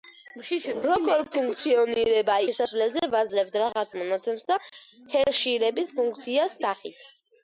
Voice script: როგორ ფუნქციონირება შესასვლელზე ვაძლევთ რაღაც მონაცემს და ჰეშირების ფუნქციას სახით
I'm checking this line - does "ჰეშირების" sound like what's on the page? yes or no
yes